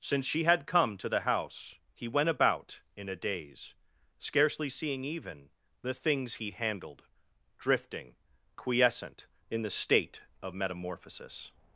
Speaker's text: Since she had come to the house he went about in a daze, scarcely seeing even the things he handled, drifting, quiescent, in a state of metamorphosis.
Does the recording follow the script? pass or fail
fail